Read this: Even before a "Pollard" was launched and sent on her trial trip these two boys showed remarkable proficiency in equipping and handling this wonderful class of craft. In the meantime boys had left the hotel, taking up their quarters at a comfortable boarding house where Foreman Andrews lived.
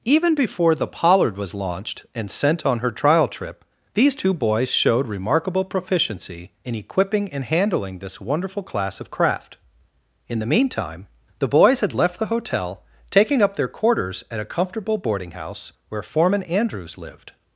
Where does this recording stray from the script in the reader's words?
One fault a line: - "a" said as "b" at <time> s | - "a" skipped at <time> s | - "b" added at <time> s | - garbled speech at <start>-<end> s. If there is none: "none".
- "a" said as "the" at 0.7 s
- "the" added at 11.4 s